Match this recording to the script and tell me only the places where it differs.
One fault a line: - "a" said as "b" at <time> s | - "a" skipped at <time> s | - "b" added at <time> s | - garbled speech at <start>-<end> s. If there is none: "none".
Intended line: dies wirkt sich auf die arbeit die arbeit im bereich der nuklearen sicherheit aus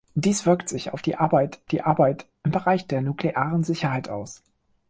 none